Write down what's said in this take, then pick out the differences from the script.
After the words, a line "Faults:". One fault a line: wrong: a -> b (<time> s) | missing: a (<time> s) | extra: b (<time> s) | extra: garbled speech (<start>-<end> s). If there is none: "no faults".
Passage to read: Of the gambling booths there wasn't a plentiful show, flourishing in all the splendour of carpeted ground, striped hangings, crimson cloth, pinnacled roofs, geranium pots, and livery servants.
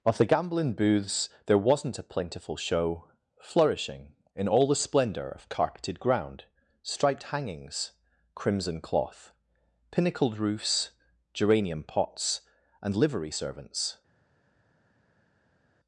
Of the gambling booths there wasn't a plentiful show, flourishing in all the splendour of carpeted ground, striped hangings, crimson cloth, pinnacled roofs, geranium pots, and livery servants.
Faults:
no faults